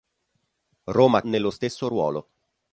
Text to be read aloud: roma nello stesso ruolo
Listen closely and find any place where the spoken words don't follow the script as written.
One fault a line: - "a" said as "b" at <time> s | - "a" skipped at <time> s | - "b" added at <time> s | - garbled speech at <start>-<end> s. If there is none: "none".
none